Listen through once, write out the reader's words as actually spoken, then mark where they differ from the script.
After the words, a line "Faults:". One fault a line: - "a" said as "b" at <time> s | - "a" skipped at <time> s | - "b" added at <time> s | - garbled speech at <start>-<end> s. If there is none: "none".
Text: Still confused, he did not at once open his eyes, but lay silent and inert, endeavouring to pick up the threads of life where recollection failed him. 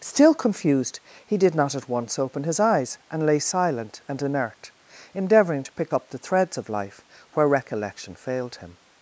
Still confused, he did not at once open his eyes, and lay silent and inert, endeavouring to pick up the threads of life where recollection failed him.
Faults:
- "but" said as "and" at 3.1 s